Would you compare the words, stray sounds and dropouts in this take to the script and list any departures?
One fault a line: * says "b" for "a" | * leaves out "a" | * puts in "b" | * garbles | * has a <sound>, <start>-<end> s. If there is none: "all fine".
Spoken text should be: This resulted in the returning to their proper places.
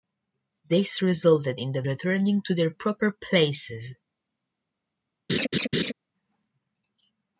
* has a laugh, 5.3-5.9 s